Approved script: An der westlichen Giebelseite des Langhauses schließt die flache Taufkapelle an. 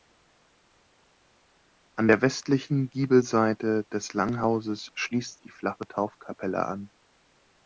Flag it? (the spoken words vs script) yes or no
no